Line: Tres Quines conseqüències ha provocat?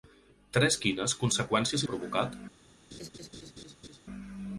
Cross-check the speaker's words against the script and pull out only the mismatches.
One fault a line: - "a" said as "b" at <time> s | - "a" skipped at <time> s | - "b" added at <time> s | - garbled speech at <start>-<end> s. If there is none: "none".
none